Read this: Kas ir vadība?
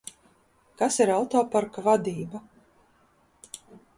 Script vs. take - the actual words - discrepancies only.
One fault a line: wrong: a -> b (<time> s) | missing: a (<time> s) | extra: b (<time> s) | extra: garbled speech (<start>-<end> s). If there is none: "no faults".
extra: autoparka (1.2 s)